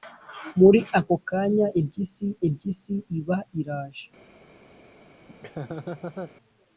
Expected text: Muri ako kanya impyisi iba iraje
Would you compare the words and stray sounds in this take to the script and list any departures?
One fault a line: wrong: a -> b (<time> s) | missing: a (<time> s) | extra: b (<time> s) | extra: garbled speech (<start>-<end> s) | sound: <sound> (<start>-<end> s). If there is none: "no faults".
extra: impyisi (2.5 s)
sound: laugh (5.3-6.3 s)